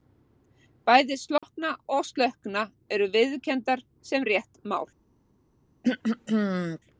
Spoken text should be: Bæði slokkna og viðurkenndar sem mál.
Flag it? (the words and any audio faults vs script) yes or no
yes